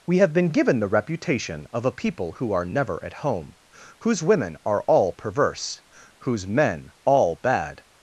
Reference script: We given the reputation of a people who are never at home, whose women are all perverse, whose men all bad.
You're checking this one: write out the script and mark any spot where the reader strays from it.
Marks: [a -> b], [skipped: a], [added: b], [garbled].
We [added: have been] given the reputation of a people who are never at home, whose women are all perverse, whose men all bad.